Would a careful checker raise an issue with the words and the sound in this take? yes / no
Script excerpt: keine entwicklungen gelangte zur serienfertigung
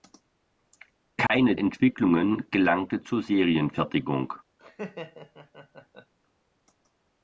yes